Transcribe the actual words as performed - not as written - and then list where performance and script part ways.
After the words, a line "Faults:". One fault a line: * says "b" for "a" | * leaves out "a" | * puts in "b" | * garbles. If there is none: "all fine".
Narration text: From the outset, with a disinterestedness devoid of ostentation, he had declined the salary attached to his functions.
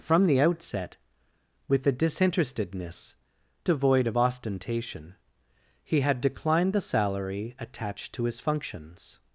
From the outset, with a disinterestedness devoid of ostentation, he had declined the salary attached to his functions.
Faults:
all fine